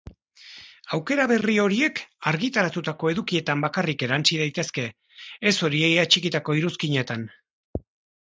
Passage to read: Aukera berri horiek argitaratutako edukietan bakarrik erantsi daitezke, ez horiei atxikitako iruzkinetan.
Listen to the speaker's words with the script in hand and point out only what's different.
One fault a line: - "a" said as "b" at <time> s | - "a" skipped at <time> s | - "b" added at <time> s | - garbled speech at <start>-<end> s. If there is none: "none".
none